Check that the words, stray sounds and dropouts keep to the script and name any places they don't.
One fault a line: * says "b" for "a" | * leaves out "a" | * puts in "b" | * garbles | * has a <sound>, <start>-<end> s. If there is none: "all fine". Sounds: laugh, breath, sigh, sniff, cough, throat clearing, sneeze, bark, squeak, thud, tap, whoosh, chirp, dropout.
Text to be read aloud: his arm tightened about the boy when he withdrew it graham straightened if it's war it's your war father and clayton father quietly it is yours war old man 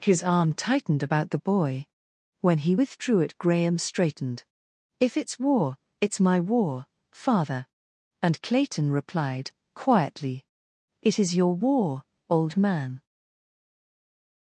* says "my" for "your"
* says "replied" for "father"
* says "your" for "yours"